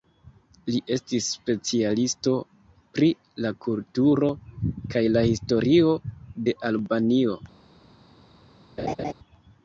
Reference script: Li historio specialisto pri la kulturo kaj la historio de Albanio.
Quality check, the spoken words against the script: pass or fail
fail